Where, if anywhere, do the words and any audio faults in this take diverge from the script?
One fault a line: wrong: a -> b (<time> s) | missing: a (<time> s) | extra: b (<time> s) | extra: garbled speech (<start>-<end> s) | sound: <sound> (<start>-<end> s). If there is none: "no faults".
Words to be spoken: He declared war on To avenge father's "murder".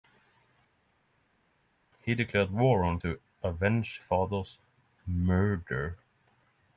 no faults